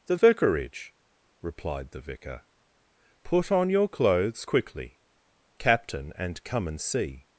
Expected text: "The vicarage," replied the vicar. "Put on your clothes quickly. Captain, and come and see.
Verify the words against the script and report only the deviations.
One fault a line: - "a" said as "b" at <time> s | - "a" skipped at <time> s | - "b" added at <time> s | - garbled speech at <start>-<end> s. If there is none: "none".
none